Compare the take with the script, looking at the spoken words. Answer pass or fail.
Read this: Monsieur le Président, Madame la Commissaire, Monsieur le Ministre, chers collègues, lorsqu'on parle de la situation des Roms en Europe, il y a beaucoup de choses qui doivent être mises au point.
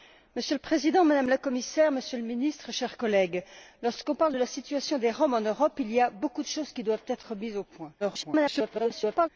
fail